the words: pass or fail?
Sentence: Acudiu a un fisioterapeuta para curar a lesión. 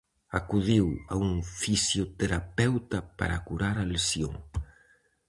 pass